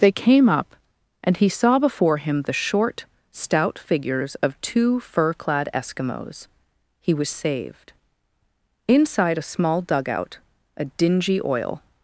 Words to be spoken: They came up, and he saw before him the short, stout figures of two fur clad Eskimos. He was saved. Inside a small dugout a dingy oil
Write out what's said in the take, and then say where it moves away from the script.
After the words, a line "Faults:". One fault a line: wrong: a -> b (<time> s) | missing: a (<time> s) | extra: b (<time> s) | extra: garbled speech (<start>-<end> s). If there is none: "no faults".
They came up, and he saw before him the short, stout figures of two fur clad Eskimos. He was saved. Inside a small dugout a dingy oil
Faults:
no faults